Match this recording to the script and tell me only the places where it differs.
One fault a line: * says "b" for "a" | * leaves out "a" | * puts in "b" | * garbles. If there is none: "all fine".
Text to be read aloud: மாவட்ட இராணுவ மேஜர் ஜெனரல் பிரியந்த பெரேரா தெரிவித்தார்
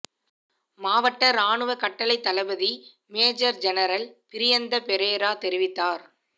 * puts in "கட்டளைத் தளபதி"